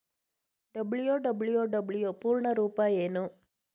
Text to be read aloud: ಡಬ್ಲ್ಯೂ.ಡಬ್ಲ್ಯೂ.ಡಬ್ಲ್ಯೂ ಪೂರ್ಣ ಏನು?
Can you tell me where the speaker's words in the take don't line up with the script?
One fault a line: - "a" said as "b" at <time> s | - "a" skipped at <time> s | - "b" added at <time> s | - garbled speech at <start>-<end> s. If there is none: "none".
- "ರೂಪ" added at 2.5 s